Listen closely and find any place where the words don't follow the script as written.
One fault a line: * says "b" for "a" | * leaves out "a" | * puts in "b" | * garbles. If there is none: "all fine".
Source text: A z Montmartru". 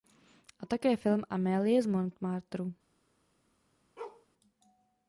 * puts in "také film Amélie"